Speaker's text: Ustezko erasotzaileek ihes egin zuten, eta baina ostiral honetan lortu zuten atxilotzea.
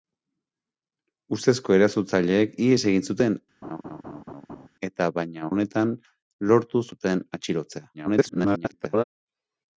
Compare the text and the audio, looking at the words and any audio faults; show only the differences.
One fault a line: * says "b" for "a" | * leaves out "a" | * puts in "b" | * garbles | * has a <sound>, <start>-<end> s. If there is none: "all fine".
* has a laugh, 3.6-4.7 s
* leaves out "ostiral"
* garbles